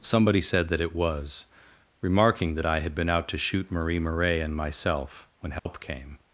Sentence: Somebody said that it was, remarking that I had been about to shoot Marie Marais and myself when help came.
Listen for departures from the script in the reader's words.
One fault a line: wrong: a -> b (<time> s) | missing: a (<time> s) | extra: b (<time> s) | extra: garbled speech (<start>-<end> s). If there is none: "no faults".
wrong: about -> out (3.1 s)